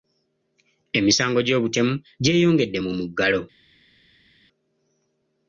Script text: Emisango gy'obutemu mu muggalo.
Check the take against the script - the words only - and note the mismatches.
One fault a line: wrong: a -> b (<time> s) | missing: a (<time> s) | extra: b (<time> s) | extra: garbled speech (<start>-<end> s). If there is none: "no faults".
extra: gyeyongedde (2.2 s)